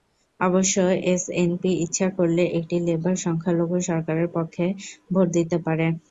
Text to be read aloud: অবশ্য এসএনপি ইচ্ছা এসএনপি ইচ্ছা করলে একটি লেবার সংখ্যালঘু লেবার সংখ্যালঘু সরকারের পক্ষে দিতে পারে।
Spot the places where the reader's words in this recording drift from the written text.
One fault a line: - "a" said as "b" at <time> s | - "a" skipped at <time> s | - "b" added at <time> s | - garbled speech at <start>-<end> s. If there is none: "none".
- "এসএনপি ইচ্ছা" skipped at 2.1 s
- "লেবার সংখ্যালঘু" skipped at 3.8 s
- "ভোট" added at 5.1 s